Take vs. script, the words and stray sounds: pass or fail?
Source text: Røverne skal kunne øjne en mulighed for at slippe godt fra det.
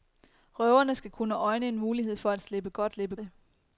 fail